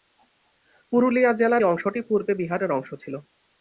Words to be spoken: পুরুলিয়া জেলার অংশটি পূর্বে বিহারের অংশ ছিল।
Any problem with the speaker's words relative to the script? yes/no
no